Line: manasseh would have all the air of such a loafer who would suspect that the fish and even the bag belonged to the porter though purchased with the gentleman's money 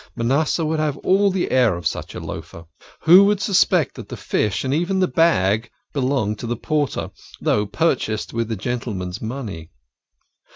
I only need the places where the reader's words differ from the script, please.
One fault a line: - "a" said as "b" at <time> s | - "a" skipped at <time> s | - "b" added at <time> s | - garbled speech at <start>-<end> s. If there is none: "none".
none